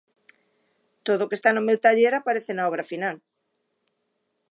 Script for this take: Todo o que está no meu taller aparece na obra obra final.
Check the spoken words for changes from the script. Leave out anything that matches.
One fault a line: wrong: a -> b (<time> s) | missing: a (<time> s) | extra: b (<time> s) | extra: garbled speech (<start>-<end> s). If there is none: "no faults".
missing: obra (2.9 s)